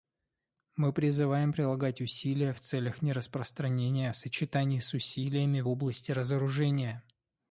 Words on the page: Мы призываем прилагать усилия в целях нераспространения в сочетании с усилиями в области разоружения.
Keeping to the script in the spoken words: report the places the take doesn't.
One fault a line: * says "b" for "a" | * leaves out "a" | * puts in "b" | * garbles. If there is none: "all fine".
all fine